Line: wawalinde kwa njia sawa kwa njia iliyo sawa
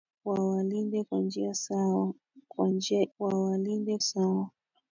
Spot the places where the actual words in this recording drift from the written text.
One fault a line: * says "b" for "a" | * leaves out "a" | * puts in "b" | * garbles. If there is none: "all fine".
* says "wawalinde" for "iliyo"